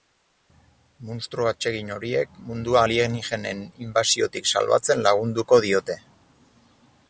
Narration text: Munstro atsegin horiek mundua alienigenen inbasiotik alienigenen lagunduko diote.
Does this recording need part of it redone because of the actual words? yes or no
yes